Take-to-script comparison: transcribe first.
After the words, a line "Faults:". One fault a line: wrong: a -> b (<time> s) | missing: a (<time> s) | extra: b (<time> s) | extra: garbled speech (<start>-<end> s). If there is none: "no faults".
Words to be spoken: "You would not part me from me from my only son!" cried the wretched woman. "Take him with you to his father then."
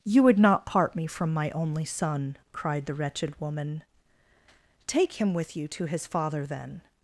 "You would not part me from my only son!" cried the wretched woman. "Take him with you to his father then."
Faults:
missing: me from (1.3 s)